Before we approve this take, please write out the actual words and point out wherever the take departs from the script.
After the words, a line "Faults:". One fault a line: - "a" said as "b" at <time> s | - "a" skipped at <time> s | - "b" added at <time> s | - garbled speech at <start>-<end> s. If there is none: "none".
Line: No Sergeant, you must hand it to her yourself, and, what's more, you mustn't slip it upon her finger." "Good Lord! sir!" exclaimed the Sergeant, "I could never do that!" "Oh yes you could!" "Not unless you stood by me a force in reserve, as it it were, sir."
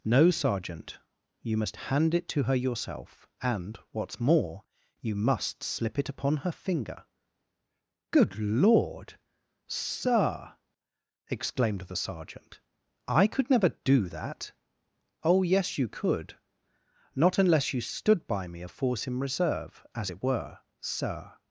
No Sergeant, you must hand it to her yourself, and, what's more, you must slip it upon her finger." "Good Lord! sir!" exclaimed the Sergeant, "I could never do that!" "Oh yes you could!" "Not unless you stood by me a force in reserve, as it were, sir."
Faults:
- "mustn't" said as "must" at 5.2 s
- "it" skipped at 20.2 s